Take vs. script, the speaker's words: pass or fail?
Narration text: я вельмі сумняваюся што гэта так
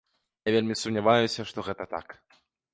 pass